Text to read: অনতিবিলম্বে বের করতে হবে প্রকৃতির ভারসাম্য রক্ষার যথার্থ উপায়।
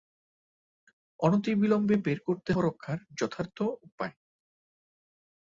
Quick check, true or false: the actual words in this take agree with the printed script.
false